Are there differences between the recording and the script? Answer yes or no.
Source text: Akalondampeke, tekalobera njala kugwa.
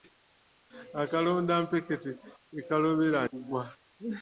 yes